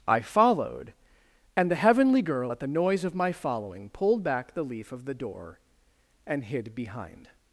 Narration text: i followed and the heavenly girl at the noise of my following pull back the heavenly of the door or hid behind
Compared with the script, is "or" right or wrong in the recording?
wrong